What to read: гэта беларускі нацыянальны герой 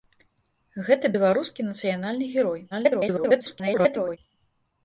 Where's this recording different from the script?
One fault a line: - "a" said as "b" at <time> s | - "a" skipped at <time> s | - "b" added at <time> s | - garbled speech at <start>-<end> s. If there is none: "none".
- garbled speech at 2.7-4.2 s